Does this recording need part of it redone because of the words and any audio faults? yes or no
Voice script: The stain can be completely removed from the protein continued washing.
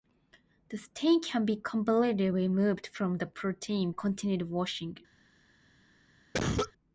yes